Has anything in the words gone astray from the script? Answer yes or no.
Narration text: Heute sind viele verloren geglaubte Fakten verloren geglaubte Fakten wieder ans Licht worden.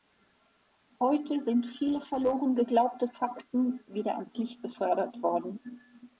yes